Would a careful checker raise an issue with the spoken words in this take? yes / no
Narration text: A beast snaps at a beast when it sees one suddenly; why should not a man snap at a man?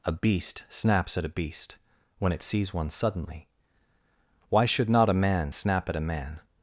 no